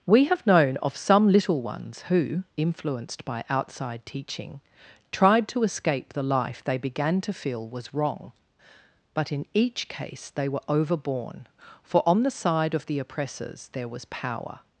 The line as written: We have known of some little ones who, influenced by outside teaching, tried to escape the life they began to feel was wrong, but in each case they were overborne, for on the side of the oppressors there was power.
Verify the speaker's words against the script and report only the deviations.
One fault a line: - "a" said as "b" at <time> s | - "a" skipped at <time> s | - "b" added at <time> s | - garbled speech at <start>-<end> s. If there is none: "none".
none